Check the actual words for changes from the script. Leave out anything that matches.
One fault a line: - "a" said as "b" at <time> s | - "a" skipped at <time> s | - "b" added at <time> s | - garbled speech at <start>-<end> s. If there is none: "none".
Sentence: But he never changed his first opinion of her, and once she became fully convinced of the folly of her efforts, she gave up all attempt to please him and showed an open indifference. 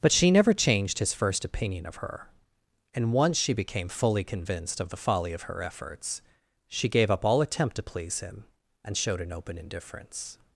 - "he" said as "she" at 0.1 s